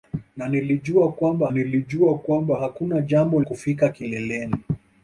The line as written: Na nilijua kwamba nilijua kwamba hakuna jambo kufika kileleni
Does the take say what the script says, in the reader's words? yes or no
yes